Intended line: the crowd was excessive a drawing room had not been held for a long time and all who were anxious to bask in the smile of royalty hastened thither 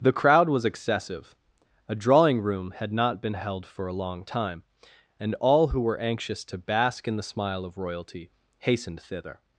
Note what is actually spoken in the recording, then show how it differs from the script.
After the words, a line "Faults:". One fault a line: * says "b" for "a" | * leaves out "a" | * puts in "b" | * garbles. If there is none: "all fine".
the crowd was excessive a drawing room had not been held for a long time and all who were anxious to bask in the smile of royalty hastened thither
Faults:
all fine